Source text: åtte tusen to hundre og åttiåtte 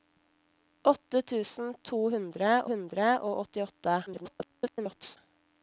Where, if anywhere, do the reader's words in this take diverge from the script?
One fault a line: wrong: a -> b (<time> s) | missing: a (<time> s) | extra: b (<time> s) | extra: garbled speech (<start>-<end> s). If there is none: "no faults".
extra: hundre (2.7 s)
extra: garbled speech (4.1-5.2 s)